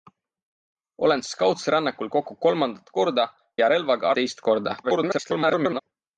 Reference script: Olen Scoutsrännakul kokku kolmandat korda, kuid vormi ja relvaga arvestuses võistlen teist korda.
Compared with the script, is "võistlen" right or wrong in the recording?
wrong